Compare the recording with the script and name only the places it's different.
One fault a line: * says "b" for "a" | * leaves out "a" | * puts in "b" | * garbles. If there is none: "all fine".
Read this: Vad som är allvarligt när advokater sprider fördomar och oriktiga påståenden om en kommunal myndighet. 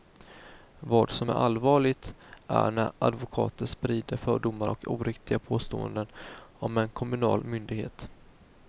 * puts in "är"